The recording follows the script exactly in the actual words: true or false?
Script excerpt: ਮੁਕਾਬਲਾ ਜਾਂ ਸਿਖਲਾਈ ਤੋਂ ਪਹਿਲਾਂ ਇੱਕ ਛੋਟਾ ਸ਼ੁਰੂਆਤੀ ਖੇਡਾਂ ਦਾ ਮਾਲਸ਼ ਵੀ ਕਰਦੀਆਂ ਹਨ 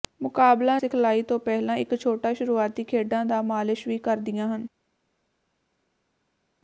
false